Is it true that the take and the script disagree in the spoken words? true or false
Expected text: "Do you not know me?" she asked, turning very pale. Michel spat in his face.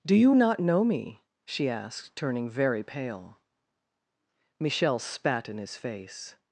false